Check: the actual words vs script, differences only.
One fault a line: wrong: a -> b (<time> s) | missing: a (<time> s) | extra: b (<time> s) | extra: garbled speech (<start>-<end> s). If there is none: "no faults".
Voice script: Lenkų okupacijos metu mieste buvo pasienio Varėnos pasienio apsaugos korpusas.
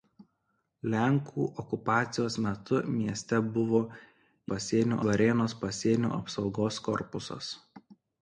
no faults